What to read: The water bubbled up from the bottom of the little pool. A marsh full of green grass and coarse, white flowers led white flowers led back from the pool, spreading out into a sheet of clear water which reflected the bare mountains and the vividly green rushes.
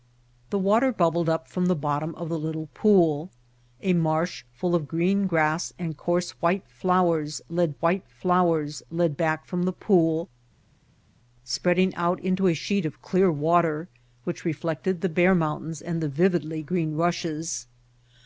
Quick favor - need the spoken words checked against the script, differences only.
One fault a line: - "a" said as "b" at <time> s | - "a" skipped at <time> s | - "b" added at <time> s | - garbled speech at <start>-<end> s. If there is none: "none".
none